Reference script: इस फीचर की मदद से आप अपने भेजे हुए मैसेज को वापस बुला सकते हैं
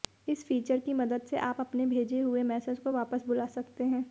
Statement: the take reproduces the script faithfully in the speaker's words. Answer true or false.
true